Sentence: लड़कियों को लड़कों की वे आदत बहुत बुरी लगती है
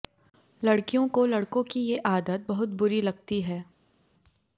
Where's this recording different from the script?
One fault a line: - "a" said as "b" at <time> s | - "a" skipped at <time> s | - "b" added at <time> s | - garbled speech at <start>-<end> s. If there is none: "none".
- "वे" said as "ये" at 1.8 s